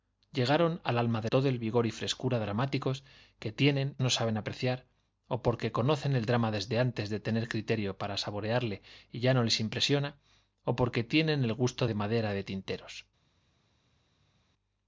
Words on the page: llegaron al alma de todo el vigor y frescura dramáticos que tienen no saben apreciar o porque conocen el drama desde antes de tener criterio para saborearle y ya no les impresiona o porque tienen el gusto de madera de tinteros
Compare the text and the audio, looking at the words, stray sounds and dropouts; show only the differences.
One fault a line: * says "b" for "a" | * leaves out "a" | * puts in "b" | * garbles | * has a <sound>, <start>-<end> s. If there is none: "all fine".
all fine